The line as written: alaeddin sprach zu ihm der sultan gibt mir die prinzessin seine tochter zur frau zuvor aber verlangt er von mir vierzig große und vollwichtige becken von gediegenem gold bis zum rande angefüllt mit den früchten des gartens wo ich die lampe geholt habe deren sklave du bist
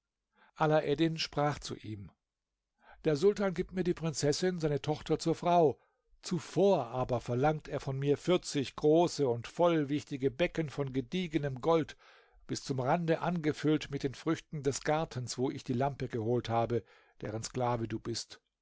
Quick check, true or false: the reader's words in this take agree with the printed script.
true